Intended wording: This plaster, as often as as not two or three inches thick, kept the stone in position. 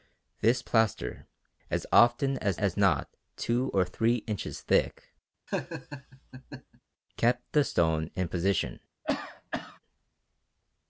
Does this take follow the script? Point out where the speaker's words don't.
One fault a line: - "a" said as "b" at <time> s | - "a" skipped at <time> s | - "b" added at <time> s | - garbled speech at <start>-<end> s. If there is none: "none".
none